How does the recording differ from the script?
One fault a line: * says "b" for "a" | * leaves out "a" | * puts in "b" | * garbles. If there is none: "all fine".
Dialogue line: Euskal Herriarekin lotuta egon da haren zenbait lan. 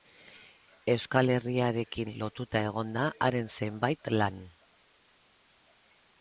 all fine